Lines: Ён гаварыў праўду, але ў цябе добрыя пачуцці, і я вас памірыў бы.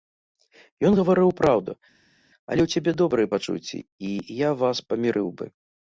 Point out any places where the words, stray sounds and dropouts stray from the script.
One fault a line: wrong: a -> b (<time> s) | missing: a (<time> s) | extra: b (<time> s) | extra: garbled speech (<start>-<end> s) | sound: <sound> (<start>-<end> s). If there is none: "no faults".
no faults